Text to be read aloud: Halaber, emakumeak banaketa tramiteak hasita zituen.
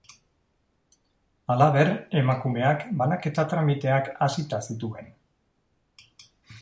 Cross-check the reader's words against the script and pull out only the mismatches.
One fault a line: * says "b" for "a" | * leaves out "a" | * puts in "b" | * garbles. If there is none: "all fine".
all fine